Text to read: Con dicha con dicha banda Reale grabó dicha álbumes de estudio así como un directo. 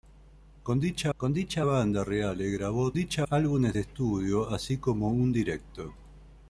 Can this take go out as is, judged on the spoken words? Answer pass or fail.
pass